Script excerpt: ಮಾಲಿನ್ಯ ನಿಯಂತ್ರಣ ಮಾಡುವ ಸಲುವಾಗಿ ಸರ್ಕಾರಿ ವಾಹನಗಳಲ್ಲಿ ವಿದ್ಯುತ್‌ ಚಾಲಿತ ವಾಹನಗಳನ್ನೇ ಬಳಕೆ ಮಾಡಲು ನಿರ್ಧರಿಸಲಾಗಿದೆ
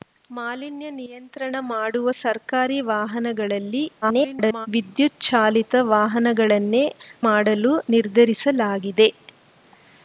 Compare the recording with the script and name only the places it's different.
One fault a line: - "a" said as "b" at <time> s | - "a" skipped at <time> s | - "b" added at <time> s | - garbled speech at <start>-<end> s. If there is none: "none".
- "ಸಲುವಾಗಿ" skipped at 2.1 s
- garbled speech at 4.0-4.7 s
- "ಬಳಕೆ" skipped at 6.8 s